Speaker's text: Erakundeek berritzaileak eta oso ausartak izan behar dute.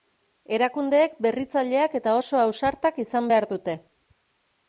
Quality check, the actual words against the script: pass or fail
pass